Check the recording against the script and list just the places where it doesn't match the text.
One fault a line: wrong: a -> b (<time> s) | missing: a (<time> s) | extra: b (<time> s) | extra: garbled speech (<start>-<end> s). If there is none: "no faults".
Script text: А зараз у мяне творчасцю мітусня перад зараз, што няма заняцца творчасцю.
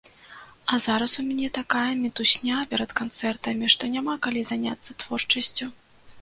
wrong: творчасцю -> такая (1.6 s)
wrong: зараз -> канцэртамі (3.0 s)
extra: калі (4.3 s)